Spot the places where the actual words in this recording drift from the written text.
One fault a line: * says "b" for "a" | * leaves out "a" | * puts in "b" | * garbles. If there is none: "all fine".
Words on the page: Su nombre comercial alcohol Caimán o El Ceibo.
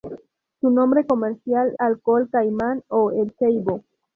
all fine